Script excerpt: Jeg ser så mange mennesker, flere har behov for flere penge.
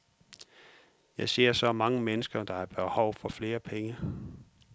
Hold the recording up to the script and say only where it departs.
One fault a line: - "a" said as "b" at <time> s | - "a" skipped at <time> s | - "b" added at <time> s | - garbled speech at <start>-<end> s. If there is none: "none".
- "flere" said as "der" at 2.4 s